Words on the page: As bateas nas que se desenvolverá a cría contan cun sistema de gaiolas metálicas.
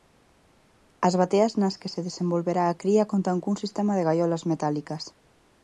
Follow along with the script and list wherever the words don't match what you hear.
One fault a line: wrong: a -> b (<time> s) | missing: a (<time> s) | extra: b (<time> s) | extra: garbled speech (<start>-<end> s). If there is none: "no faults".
no faults